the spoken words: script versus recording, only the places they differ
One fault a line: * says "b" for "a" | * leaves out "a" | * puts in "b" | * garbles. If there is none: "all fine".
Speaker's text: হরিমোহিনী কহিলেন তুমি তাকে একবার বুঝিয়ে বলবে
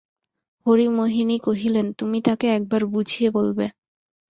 all fine